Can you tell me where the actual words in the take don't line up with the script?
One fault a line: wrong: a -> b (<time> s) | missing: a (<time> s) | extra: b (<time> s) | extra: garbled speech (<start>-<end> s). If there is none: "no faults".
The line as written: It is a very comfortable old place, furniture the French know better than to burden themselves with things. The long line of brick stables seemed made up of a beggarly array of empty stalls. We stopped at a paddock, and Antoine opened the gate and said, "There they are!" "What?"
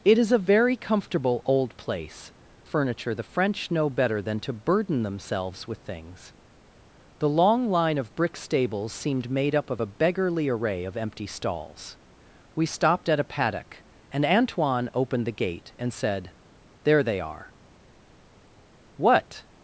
no faults